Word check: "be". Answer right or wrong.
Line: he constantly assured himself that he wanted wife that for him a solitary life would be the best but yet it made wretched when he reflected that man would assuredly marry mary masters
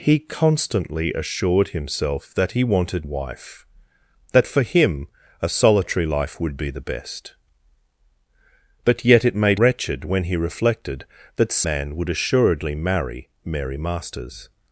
right